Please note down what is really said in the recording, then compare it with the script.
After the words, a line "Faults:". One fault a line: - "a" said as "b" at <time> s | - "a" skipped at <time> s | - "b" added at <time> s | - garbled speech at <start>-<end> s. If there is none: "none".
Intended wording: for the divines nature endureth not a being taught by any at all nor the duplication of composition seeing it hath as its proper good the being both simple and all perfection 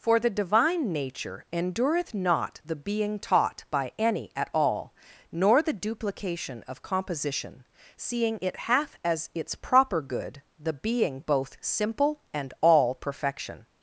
for the divine nature endureth not the being taught by any at all nor the duplication of composition seeing it hath as its proper good the being both simple and all perfection
Faults:
- "divines" said as "divine" at 0.3 s
- "a" said as "the" at 2.6 s